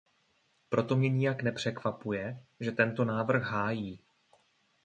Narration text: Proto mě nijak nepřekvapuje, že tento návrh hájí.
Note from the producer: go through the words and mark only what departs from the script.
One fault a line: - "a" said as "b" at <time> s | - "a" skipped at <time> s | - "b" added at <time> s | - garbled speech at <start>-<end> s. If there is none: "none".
none